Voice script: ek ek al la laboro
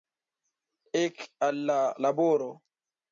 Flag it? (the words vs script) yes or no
yes